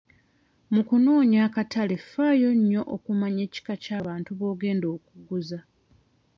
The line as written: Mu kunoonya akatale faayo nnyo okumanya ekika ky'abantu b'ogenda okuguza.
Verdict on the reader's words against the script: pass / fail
pass